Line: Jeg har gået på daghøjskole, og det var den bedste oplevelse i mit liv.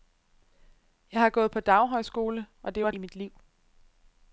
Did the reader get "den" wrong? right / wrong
wrong